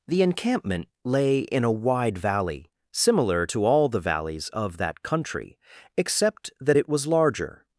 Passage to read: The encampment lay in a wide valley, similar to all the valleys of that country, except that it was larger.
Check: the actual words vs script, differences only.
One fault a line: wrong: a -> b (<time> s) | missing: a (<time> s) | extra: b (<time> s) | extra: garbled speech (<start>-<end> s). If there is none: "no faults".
no faults